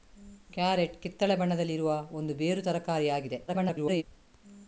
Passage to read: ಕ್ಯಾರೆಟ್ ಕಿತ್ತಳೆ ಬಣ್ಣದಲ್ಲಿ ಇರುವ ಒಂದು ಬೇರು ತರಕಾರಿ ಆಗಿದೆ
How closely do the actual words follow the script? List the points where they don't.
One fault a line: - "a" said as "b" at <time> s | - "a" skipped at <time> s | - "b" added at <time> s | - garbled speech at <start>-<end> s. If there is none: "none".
- garbled speech at 3.5-4.0 s